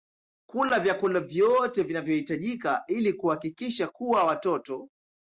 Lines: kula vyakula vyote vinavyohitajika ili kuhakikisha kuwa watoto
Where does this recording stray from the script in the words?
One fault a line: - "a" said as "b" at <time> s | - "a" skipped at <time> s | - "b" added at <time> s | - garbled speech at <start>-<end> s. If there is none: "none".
none